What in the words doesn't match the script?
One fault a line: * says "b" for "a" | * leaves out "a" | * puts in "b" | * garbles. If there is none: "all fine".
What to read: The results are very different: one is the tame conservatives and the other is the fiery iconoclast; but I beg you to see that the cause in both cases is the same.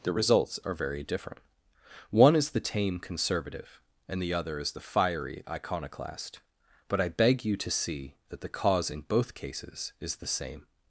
* says "conservative" for "conservatives"